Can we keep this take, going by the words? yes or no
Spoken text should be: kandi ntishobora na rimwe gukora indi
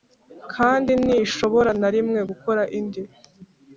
yes